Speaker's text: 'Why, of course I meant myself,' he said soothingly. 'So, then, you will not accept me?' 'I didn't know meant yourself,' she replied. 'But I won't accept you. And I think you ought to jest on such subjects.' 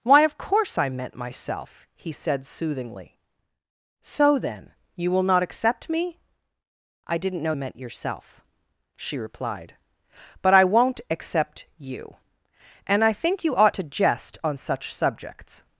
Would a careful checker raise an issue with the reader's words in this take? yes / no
no